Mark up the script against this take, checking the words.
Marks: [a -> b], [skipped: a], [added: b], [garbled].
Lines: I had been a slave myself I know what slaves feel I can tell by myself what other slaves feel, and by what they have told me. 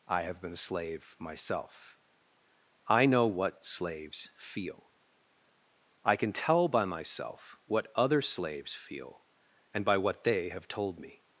I [had -> have] been a slave myself I know what slaves feel I can tell by myself what other slaves feel, and by what they have told me.